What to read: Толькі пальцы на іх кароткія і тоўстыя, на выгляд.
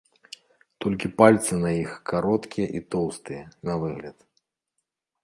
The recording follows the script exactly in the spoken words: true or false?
true